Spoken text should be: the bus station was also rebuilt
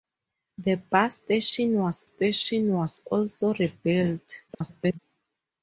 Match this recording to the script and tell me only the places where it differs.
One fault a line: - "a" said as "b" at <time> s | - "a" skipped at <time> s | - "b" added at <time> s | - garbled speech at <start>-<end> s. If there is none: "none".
- "station was" added at 2.0 s
- garbled speech at 4.5-5.0 s